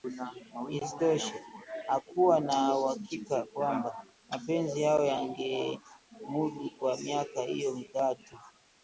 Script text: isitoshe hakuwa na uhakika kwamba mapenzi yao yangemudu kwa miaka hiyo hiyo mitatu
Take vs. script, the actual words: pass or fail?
fail